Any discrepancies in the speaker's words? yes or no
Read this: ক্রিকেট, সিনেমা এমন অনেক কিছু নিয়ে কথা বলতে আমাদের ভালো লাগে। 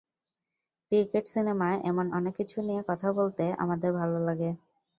no